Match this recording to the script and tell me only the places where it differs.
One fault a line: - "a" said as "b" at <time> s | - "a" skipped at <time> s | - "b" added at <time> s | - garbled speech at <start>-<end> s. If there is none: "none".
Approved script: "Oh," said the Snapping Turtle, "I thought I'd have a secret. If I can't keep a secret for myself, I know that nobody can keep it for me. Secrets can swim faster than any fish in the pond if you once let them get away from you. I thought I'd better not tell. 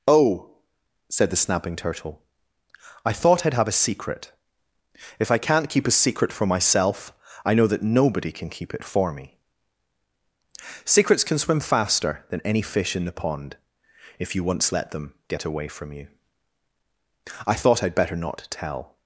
none